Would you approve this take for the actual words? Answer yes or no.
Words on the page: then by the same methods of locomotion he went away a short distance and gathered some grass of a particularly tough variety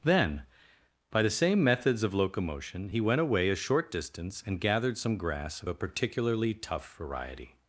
yes